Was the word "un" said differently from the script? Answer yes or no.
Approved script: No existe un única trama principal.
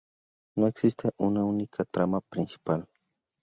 yes